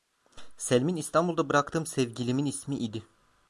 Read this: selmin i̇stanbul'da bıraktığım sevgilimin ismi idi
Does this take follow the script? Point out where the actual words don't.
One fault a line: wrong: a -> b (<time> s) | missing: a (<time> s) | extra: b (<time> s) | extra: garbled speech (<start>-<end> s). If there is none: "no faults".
no faults